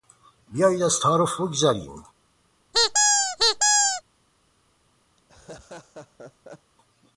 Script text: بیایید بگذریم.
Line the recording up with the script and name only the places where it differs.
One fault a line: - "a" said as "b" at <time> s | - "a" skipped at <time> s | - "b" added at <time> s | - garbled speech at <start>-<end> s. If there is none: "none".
- "از تعارف" added at 0.8 s